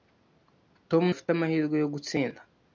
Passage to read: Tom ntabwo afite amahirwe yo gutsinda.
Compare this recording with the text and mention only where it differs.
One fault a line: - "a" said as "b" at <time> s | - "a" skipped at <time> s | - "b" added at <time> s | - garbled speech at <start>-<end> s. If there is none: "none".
- "ntabwo" skipped at 1.0 s